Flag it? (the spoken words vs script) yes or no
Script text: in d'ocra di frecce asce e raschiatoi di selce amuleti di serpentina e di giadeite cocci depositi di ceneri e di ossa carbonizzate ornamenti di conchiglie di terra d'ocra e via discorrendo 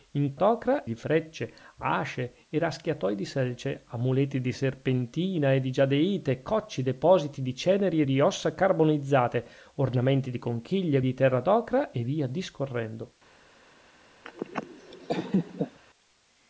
no